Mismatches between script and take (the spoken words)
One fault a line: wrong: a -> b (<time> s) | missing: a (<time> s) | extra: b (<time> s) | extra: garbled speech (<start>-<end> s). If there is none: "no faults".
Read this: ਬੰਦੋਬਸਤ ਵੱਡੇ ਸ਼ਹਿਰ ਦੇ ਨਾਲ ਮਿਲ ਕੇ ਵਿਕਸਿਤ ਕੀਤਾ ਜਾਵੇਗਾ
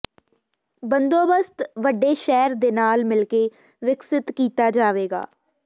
no faults